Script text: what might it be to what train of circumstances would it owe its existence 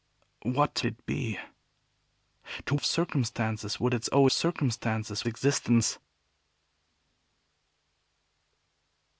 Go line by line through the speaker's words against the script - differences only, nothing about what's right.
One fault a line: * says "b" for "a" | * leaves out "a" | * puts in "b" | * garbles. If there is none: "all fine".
* leaves out "might"
* leaves out "what train"
* says "circumstances" for "its"